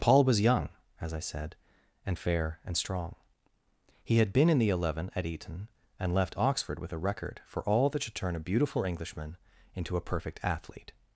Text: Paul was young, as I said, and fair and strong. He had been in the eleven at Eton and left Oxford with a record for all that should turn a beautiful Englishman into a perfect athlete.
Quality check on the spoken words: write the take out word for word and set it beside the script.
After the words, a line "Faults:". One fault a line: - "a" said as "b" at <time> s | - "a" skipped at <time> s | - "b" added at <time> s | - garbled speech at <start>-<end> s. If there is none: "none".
Paul was young, as I said, and fair and strong. He had been in the eleven at Eton and left Oxford with a record for all that should turn a beautiful Englishman into a perfect athlete.
Faults:
none